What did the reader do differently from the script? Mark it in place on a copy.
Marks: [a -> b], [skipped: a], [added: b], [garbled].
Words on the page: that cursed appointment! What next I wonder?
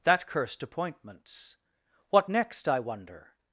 that cursed [appointment! -> appointments] What next I wonder?